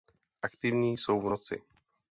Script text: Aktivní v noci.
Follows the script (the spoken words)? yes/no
no